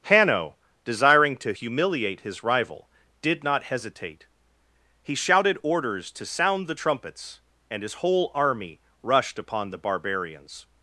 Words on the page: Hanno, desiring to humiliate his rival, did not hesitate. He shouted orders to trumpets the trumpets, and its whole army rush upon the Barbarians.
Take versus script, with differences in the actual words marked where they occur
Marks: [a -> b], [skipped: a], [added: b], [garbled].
Hanno, desiring to humiliate his rival, did not hesitate. He shouted orders to [trumpets -> sound] the trumpets, and [its -> his] whole army [rush -> rushed] upon the Barbarians.